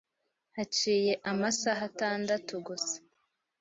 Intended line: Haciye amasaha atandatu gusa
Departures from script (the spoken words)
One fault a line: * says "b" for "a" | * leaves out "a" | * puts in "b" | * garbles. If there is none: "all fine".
all fine